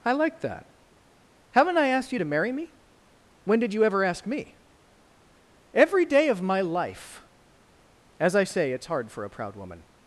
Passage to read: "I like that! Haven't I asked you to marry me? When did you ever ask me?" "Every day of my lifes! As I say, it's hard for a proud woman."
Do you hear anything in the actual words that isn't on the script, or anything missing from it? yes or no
yes